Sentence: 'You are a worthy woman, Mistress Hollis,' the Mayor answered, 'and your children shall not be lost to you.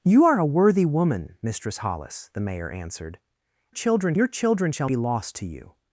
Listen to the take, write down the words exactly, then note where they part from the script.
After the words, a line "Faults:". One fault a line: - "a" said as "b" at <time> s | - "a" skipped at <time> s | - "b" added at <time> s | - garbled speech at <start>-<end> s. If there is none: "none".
'You are a worthy woman, Mistress Hollis,' the Mayor answered, 'children your children shall be lost to you.
Faults:
- "and" said as "children" at 3.7 s
- "not" skipped at 4.9 s